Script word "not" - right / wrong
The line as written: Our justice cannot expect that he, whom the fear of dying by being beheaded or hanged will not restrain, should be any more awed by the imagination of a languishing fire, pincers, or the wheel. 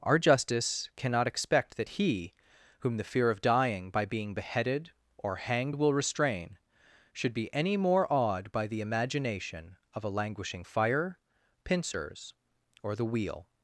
wrong